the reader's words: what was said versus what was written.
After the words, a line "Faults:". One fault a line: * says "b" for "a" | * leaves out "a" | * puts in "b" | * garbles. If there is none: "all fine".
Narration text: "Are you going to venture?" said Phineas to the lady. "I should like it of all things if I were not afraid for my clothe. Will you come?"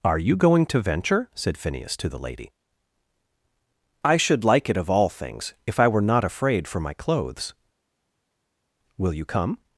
"Are you going to venture?" said Phineas to the lady. "I should like it of all things if I were not afraid for my clothes. Will you come?"
Faults:
* says "clothes" for "clothe"